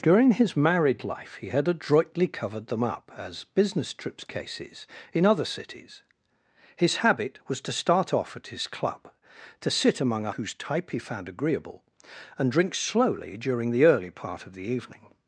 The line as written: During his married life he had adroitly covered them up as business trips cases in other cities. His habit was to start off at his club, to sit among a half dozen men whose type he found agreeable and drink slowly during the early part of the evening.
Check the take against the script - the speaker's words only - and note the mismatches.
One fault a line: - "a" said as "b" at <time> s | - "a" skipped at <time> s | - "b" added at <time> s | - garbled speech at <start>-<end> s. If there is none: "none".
- "half dozen men" skipped at 10.3 s